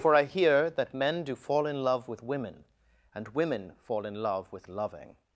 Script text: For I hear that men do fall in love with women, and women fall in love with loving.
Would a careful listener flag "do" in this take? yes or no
no